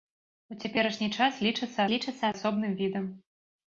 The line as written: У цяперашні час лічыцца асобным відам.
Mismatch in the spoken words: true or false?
true